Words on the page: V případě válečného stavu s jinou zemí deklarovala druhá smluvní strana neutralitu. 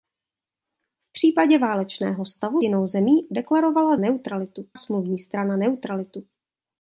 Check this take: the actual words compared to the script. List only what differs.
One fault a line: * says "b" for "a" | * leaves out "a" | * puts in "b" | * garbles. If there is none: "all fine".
* leaves out "s"
* says "neutralitu" for "druhá"